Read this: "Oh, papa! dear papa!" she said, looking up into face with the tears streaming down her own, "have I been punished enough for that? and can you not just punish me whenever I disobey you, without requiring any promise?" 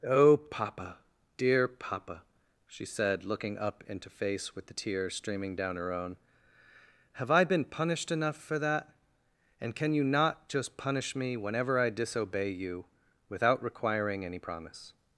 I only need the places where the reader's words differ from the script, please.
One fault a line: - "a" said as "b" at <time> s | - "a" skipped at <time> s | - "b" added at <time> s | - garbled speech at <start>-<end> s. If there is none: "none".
none